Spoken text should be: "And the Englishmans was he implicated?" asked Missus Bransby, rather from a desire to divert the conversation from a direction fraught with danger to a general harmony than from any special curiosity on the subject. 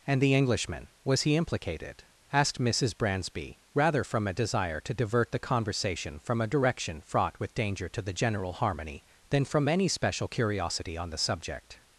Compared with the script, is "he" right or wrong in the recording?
right